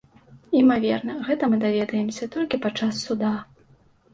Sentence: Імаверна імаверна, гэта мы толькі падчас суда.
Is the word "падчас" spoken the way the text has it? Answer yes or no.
yes